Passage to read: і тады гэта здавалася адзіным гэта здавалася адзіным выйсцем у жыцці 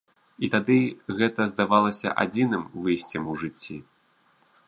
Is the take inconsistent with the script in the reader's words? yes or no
yes